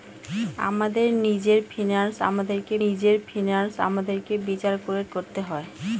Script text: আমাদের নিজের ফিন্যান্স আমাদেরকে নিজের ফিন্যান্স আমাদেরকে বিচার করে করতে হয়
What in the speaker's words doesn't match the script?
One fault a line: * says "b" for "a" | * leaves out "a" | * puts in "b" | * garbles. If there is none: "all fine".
all fine